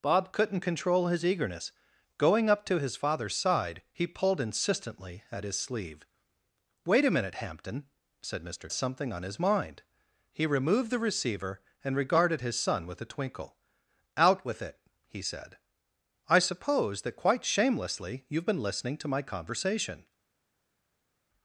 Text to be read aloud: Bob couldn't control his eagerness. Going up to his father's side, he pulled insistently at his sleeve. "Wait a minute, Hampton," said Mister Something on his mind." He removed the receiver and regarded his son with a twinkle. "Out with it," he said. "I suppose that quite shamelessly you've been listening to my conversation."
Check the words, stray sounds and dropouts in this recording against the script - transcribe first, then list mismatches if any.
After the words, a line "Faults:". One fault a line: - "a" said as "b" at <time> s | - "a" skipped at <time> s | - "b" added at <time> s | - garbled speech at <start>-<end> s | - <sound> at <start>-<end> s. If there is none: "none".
Bob couldn't control his eagerness. Going up to his father's side, he pulled insistently at his sleeve. "Wait a minute, Hampton," said Mister Something on his mind." He removed the receiver and regarded his son with a twinkle. "Out with it," he said. "I suppose that quite shamelessly you've been listening to my conversation."
Faults:
none